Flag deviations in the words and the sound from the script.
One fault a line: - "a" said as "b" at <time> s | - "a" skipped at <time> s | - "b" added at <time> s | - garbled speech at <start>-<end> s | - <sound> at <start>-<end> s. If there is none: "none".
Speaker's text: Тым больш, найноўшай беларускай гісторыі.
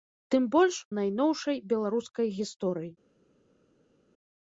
none